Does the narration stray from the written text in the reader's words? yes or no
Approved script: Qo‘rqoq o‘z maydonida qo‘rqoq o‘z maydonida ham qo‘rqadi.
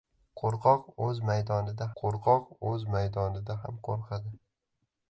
no